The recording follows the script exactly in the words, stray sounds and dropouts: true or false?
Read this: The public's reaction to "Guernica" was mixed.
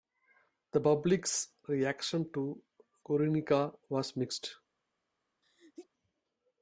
false